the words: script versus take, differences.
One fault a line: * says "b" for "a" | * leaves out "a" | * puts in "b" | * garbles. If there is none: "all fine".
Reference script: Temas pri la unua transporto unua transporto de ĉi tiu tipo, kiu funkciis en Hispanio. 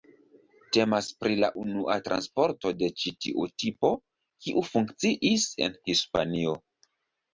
* leaves out "unua transporto"